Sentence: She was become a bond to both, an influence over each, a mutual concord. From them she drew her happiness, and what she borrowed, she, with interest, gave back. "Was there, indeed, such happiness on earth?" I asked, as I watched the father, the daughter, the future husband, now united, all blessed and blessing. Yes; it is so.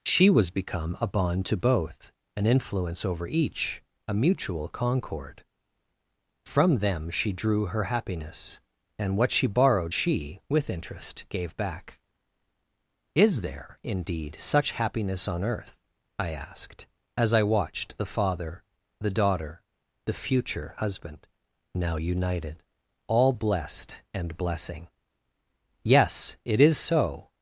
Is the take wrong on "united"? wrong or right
right